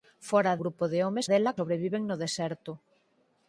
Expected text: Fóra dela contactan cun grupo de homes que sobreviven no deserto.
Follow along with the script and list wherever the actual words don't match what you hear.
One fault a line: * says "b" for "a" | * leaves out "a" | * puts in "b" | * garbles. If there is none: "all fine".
* leaves out "dela contactan cun"
* says "dela" for "que"